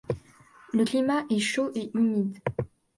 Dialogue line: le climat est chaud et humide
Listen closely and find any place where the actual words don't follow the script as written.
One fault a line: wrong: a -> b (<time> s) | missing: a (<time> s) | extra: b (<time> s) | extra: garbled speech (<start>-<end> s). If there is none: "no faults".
no faults